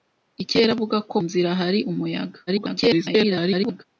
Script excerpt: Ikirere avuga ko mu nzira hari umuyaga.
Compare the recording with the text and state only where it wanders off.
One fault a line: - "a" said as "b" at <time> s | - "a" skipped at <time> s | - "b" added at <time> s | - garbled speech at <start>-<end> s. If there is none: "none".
- "mu" skipped at 1.2 s
- garbled speech at 2.5-3.8 s